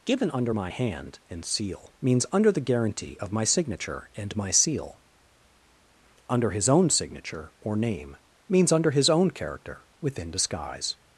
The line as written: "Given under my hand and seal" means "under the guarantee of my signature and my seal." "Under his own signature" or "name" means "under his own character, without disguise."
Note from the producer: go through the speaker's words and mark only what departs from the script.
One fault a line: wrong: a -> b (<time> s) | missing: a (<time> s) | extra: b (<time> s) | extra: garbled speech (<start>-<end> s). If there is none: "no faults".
wrong: without -> within (10.0 s)